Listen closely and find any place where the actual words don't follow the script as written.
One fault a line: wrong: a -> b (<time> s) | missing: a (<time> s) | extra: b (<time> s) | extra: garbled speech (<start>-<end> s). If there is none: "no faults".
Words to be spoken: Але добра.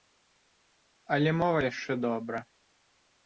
extra: мова яшчэ (1.4 s)